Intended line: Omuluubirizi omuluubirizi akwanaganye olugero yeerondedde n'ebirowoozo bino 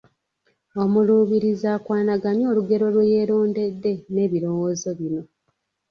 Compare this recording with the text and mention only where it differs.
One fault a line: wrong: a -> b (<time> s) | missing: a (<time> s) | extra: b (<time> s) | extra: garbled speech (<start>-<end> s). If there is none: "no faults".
missing: omuluubirizi (1.7 s)
extra: lwe (2.9 s)